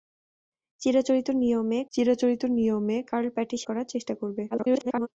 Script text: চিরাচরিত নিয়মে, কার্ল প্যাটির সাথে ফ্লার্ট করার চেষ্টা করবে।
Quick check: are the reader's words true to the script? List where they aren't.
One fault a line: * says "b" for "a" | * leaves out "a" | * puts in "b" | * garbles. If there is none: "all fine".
* puts in "চিরাচরিত নিয়মে"
* leaves out "সাথে ফ্লার্ট"
* garbles